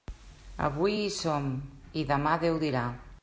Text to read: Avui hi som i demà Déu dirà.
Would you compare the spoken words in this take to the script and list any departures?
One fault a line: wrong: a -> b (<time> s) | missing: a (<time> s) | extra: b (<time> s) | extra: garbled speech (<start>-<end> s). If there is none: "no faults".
no faults